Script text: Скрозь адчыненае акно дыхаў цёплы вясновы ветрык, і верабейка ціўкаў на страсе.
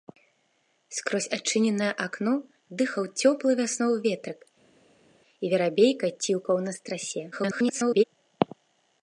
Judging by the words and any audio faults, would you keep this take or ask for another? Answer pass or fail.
fail